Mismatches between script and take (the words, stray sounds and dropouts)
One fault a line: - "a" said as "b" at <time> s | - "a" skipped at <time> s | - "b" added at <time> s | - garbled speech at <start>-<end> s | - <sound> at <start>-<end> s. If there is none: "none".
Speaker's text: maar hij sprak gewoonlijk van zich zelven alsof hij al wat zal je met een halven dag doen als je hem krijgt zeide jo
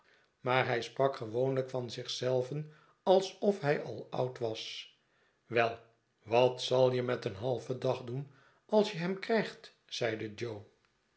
- "oud was wel" added at 4.1 s